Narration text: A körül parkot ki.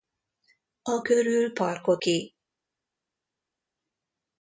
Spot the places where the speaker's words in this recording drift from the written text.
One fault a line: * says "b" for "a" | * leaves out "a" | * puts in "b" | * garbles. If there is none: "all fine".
all fine